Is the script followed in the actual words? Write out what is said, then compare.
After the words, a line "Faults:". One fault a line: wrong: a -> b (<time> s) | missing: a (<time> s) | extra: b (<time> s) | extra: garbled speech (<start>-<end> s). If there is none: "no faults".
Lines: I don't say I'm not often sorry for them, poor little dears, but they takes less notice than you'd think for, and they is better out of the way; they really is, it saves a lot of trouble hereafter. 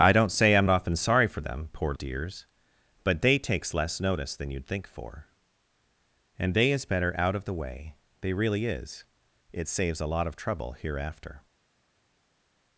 I don't say I'm often sorry for them, poor dears, but they takes less notice than you'd think for, and they is better out of the way; they really is, it saves a lot of trouble hereafter.
Faults:
missing: not (0.7 s)
missing: little (1.9 s)